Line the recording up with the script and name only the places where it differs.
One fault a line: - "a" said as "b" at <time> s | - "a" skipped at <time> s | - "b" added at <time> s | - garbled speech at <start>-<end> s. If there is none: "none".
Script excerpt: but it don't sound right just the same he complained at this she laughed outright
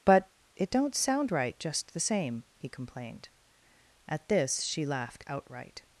none